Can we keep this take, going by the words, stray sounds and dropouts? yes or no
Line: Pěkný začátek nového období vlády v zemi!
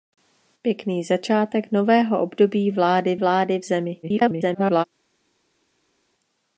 no